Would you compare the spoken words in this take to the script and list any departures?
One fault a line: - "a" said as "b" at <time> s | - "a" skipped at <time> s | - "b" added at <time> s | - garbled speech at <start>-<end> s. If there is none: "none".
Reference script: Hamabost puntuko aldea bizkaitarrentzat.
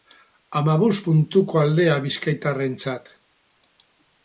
none